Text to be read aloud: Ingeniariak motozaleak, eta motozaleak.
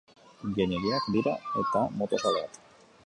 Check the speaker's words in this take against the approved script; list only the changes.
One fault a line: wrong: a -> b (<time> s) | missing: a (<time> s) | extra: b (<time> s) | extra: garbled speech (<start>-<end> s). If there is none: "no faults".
wrong: motozaleak -> dira (1.2 s)